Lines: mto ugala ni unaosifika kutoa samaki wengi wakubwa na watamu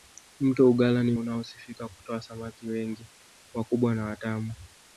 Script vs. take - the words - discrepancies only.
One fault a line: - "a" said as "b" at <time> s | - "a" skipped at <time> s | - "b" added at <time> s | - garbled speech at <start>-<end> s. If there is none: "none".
none